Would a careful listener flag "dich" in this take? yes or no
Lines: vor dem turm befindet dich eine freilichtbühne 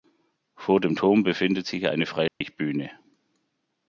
yes